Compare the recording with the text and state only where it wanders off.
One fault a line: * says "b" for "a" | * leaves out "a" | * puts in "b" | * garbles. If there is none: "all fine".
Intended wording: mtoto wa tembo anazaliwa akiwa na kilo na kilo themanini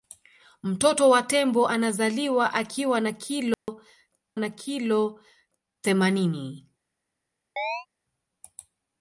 all fine